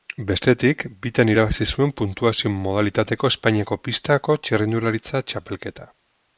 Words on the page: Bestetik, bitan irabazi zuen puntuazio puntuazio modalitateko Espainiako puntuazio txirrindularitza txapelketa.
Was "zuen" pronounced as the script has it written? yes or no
yes